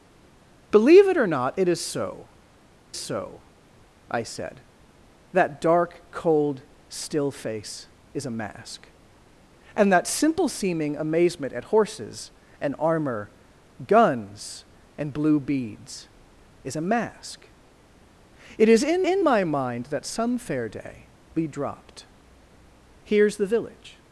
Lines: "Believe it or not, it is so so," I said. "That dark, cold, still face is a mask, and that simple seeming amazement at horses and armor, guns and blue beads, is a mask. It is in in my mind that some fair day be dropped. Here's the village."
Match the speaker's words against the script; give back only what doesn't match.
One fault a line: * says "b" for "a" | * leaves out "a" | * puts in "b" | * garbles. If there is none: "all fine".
all fine